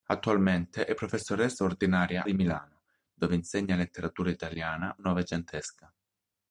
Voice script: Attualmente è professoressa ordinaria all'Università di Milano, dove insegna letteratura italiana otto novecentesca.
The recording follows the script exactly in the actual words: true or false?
false